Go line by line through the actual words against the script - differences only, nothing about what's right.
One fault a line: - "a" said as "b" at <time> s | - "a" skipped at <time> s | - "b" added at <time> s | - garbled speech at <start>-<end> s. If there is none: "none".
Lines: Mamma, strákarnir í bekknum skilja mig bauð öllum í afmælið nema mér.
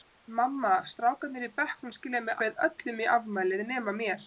none